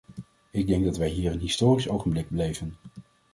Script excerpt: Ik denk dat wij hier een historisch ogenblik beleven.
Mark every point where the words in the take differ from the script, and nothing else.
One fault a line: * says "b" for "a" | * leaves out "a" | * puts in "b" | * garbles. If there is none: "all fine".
all fine